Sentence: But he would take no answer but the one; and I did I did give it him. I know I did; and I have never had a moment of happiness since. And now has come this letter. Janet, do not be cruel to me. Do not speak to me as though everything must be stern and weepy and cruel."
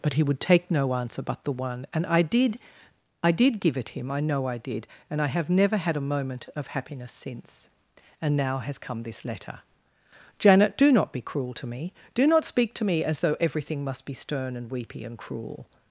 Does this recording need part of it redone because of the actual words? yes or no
no